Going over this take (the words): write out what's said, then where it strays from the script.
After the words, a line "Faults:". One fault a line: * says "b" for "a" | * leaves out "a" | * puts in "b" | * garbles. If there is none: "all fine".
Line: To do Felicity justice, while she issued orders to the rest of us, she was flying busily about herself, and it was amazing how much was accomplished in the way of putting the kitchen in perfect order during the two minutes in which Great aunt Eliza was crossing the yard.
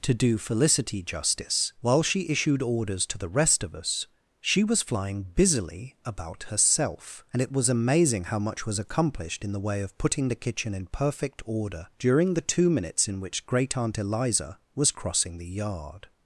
To do Felicity justice, while she issued orders to the rest of us, she was flying busily about herself, and it was amazing how much was accomplished in the way of putting the kitchen in perfect order during the two minutes in which Great aunt Eliza was crossing the yard.
Faults:
all fine